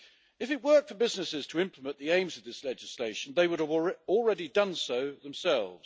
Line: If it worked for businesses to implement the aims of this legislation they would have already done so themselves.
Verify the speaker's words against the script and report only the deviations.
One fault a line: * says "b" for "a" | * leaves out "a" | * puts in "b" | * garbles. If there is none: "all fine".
all fine